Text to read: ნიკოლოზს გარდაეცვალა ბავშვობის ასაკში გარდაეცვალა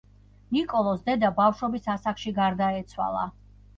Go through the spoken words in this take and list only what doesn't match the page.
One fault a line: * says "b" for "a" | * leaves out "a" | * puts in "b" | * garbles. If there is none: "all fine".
* says "დედა" for "გარდაეცვალა"